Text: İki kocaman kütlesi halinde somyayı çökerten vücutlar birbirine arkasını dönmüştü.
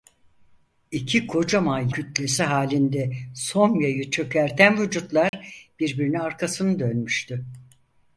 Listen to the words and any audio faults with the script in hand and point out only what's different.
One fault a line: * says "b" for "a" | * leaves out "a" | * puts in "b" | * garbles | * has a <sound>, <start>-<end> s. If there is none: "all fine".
* has a dropout, 5.3-5.3 s